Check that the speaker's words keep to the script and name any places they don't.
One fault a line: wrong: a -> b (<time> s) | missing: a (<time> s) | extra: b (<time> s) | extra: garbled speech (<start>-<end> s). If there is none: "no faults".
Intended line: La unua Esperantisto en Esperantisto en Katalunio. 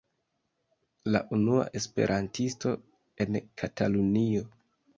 missing: Esperantisto en (3.4 s)